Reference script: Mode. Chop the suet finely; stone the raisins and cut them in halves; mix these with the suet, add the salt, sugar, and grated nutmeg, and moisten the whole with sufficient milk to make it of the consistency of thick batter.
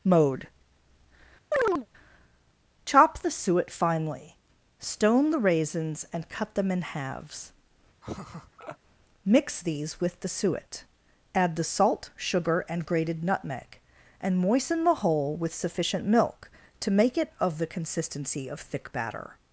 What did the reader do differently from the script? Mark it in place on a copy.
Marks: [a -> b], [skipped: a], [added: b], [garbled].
Mode. Chop the suet finely; stone the raisins and cut them in halves; mix these with the suet, add the salt, sugar, and grated nutmeg, and moisten the whole with sufficient milk to make it of the consistency of thick batter.